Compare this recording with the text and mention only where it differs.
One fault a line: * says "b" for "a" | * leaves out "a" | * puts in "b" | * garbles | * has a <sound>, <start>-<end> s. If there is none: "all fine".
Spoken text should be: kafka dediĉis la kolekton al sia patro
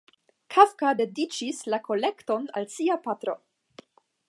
all fine